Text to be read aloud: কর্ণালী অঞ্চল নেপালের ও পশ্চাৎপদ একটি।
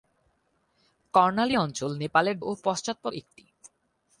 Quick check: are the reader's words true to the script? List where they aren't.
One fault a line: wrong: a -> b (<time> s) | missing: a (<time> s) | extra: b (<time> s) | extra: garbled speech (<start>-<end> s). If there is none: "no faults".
no faults